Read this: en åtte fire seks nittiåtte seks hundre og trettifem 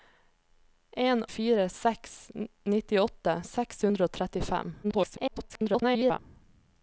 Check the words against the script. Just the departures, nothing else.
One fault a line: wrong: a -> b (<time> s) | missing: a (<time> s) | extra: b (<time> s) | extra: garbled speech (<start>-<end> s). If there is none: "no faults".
missing: åtte (1.2 s)
extra: garbled speech (4.8-6.2 s)